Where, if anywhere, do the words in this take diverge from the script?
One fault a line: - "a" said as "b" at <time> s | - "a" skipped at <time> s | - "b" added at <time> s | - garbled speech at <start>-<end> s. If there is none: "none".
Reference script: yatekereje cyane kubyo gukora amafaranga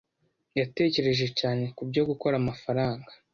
none